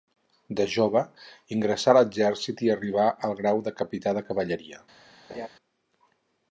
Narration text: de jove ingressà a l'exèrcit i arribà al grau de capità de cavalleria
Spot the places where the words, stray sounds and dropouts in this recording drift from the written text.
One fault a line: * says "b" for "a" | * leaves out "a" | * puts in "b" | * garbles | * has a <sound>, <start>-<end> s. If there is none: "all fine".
* has a laugh, 5.3-5.5 s